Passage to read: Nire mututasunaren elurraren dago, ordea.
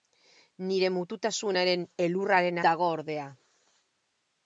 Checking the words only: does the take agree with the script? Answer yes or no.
yes